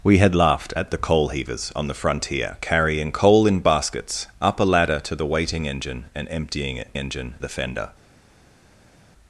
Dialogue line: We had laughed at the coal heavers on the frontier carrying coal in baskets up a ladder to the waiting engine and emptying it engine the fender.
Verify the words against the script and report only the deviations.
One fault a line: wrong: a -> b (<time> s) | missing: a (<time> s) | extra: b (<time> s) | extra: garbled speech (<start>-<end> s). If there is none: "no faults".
no faults